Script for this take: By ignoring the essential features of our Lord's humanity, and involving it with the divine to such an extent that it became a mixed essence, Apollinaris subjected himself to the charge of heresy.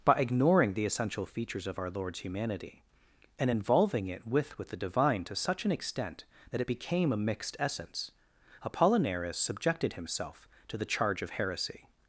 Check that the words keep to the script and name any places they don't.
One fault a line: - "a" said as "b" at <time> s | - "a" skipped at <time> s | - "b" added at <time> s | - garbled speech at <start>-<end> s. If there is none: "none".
- "with" added at 4.6 s